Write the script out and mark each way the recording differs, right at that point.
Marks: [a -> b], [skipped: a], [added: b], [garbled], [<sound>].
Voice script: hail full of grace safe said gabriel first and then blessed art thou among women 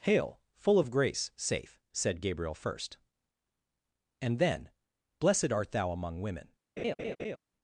hail full of grace safe said gabriel first and then blessed art thou among women [laugh]